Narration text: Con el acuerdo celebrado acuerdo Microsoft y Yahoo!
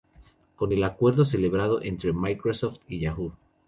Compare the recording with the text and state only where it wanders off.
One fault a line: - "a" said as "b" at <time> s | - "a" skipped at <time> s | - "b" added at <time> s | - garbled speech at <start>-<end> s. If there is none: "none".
- "acuerdo" said as "entre" at 1.8 s